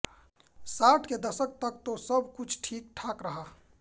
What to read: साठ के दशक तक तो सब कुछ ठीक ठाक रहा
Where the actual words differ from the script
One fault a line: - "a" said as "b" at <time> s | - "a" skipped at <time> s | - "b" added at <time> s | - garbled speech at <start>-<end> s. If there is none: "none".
none